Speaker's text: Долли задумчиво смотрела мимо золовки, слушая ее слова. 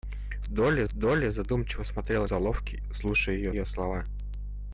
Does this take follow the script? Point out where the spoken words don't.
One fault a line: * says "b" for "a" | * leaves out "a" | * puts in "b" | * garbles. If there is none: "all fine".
* puts in "долли"
* leaves out "мимо"
* puts in "ее"